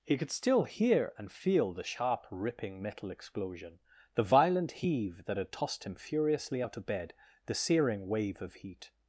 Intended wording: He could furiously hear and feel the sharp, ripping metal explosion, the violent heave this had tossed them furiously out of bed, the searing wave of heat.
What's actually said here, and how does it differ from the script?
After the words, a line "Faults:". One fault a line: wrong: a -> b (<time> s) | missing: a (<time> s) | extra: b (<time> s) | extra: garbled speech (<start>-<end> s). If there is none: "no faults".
He could still hear and feel the sharp, ripping metal explosion, the violent heave that had tossed him furiously out of bed, the searing wave of heat.
Faults:
wrong: furiously -> still (0.3 s)
wrong: this -> that (5.2 s)
wrong: them -> him (5.8 s)